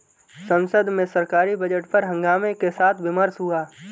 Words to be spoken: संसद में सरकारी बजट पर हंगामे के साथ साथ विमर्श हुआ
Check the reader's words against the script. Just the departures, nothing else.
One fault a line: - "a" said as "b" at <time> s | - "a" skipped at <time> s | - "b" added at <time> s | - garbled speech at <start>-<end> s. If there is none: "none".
- "साथ" skipped at 3.0 s